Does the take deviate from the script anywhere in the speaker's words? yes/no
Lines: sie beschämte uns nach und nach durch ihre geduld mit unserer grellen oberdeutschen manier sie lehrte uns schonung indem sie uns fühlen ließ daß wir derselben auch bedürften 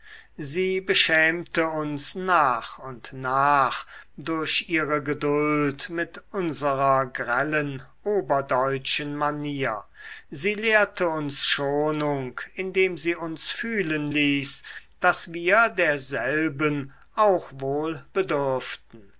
yes